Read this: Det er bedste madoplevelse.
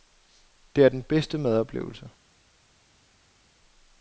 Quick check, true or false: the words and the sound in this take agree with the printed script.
false